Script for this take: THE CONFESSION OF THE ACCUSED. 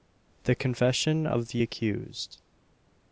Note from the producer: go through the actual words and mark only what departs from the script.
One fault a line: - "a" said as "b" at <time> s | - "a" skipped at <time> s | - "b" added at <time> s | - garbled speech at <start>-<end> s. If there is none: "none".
none